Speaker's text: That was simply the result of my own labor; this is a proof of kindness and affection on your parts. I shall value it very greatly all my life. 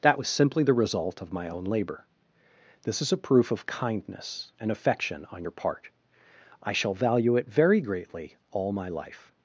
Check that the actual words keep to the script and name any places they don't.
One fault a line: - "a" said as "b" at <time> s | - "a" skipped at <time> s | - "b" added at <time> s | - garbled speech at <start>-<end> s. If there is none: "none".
- "parts" said as "part" at 5.5 s